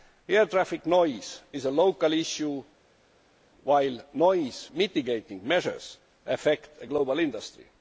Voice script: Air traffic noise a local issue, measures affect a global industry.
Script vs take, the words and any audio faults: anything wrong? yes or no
yes